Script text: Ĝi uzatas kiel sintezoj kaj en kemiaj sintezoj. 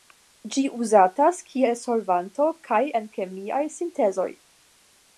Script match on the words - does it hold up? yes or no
no